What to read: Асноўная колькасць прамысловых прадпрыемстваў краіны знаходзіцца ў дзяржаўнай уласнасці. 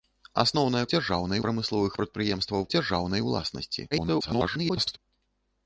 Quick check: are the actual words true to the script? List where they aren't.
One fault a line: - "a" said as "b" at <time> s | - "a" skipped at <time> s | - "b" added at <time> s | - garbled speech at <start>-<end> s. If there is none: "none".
- "колькасць" said as "дзяржаўнай" at 0.9 s
- "краіны знаходзіцца ў" skipped at 2.6 s
- garbled speech at 3.9-5.0 s